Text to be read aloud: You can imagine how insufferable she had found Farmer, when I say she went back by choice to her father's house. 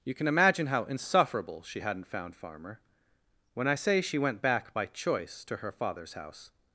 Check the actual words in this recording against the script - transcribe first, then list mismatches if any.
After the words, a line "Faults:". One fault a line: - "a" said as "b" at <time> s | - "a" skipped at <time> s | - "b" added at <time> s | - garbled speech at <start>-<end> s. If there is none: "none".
You can imagine how insufferable she hadn't found Farmer, when I say she went back by choice to her father's house.
Faults:
- "had" said as "hadn't" at 1.8 s